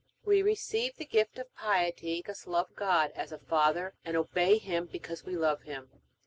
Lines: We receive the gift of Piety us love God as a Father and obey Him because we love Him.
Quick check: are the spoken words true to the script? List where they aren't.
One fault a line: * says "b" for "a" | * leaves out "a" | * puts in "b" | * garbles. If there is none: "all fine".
all fine